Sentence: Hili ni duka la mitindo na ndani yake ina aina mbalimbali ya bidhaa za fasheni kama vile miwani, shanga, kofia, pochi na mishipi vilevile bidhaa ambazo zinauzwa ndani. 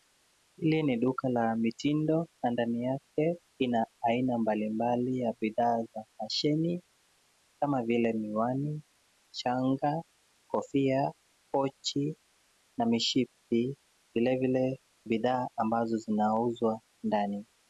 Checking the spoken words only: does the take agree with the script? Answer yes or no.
yes